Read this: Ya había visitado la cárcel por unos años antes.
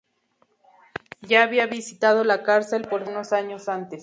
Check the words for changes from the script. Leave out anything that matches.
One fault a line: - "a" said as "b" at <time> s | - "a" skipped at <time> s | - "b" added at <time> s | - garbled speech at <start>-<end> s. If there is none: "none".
none